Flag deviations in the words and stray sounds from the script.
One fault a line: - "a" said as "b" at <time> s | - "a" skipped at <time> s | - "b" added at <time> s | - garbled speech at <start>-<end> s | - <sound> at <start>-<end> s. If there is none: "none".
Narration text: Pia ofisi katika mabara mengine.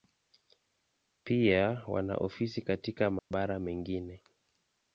- "wana" added at 1.9 s
- dropout at 3.2-3.3 s